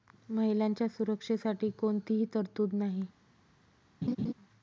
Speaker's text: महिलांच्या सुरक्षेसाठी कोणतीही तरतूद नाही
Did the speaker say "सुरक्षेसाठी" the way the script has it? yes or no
yes